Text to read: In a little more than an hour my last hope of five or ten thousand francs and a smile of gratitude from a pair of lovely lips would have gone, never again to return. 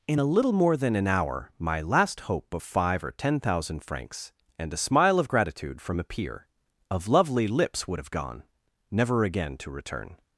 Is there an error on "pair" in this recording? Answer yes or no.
yes